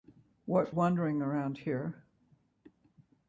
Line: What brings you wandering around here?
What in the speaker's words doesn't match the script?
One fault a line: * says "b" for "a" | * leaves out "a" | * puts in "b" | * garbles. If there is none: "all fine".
* leaves out "brings you"